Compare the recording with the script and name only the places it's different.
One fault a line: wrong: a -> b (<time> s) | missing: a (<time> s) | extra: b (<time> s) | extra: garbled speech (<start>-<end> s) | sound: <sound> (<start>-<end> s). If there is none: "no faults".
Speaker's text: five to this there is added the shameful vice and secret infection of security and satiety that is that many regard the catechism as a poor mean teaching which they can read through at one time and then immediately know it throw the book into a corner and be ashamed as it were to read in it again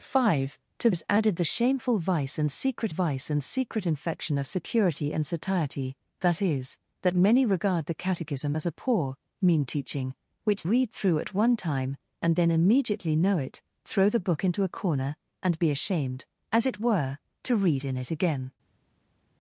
missing: this there (0.9 s)
extra: vice and secret (2.9 s)
missing: they can (10.7 s)